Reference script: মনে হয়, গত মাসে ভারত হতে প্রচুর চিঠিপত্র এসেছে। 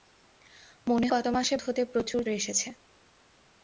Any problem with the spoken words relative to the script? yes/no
yes